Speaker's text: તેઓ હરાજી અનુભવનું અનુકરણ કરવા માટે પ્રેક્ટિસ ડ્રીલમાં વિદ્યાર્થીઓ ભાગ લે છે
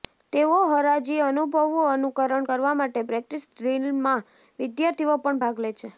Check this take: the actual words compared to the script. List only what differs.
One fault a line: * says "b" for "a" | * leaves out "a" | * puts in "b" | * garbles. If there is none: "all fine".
* puts in "પણ"